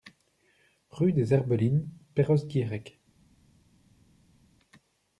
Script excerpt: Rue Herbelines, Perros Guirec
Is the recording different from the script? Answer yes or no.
yes